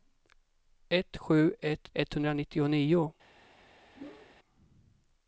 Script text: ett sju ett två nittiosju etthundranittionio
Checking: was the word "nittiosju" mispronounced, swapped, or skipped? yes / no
yes